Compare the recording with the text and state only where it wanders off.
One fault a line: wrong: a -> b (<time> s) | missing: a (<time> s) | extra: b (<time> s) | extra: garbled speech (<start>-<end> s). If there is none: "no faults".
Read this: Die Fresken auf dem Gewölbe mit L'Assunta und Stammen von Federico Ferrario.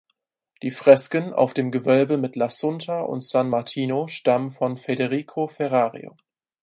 extra: San Martino (3.2 s)